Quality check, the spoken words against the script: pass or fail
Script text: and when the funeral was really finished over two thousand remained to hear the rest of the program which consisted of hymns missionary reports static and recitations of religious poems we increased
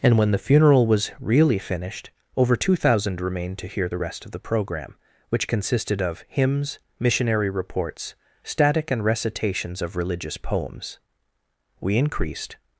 pass